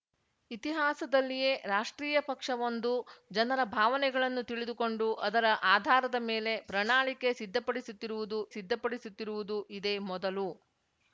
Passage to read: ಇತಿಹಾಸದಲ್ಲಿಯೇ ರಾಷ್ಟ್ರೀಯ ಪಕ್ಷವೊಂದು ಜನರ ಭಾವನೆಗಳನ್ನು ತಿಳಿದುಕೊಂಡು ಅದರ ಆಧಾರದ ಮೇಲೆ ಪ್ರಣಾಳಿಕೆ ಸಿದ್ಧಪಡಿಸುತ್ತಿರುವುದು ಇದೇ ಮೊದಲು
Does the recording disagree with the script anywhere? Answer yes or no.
yes